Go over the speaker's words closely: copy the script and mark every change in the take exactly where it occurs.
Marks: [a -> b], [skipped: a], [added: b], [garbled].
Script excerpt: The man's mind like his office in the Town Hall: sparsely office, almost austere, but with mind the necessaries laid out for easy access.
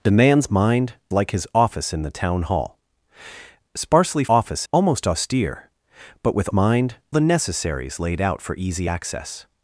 The man's mind like his office in the Town Hall: sparsely office, almost austere, but with mind the necessaries laid out for easy access.